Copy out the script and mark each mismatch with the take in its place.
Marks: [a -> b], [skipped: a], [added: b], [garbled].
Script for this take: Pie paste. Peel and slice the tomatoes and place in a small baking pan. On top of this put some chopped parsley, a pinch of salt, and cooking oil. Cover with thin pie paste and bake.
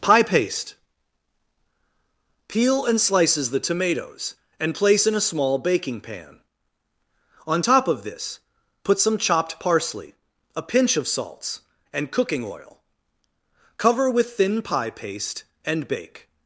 Pie paste. Peel and [slice -> slices] the tomatoes and place in a small baking pan. On top of this put some chopped parsley, a pinch of [salt, -> salts] and cooking oil. Cover with thin pie paste and bake.